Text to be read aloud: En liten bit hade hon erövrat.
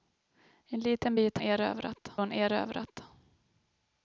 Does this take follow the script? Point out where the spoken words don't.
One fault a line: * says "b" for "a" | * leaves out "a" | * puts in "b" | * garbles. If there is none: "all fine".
* says "erövrat" for "hade"